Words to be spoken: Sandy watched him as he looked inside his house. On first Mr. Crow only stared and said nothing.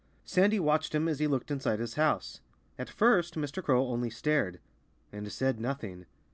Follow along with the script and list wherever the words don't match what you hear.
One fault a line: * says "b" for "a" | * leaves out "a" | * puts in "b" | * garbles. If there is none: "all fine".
* says "At" for "On"